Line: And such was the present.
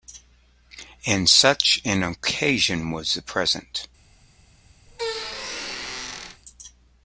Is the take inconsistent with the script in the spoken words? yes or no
yes